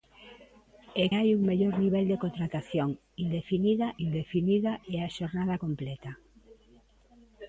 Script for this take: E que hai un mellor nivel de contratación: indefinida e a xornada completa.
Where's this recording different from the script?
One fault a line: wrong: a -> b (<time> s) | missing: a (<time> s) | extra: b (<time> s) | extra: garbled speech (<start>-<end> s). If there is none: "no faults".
missing: que (1.1 s)
extra: indefinida (4.1 s)